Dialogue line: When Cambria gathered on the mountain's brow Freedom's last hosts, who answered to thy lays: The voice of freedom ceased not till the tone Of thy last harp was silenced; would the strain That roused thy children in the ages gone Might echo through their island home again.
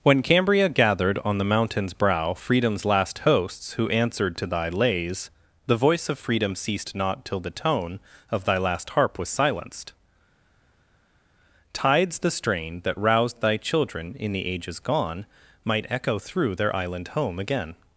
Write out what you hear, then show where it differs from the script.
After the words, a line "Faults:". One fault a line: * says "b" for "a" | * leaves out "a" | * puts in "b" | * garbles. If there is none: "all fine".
When Cambria gathered on the mountain's brow Freedom's last hosts, who answered to thy lays: The voice of freedom ceased not till the tone Of thy last harp was silenced; tides the strain That roused thy children in the ages gone Might echo through their island home again.
Faults:
* says "tides" for "would"